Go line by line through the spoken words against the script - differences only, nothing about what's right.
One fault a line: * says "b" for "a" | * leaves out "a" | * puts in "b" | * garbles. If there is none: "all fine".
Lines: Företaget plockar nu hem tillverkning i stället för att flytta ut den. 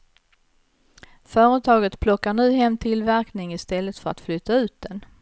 all fine